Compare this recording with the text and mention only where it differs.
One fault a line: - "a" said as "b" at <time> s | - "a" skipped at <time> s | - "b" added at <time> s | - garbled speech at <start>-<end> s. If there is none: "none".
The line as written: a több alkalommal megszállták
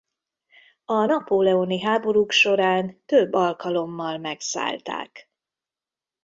- "napóleoni háborúk során" added at 1.0 s